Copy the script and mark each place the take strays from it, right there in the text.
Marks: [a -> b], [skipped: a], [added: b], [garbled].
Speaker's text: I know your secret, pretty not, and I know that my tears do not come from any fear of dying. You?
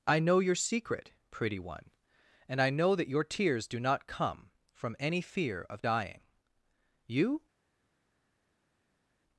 I know your secret, pretty [not, -> one] and I know that [my -> your] tears do not come from any fear of dying. You?